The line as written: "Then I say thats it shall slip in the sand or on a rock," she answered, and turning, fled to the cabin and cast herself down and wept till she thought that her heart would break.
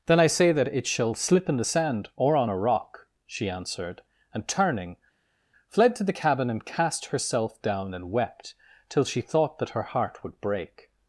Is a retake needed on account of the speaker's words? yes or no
yes